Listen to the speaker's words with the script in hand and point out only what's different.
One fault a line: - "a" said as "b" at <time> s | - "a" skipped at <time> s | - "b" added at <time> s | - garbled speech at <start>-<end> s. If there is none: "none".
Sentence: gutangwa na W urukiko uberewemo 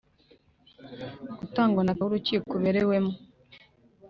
none